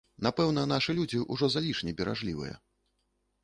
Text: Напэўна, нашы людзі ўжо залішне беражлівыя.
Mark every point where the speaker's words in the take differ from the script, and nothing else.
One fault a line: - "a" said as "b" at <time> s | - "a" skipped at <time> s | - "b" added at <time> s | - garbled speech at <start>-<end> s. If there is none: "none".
none